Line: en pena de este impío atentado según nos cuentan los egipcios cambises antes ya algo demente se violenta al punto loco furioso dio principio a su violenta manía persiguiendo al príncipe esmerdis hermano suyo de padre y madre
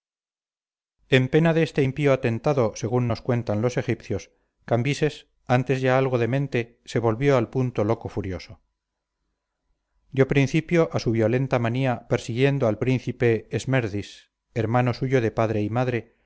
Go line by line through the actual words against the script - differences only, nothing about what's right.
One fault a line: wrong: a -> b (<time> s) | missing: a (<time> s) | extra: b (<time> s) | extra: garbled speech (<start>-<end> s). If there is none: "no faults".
wrong: violenta -> volvió (7.0 s)